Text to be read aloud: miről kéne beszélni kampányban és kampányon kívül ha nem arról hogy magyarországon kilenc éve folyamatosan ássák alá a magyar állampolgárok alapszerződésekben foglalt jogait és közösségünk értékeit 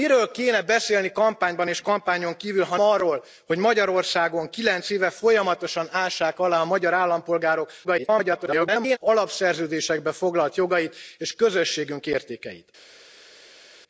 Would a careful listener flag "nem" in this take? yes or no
yes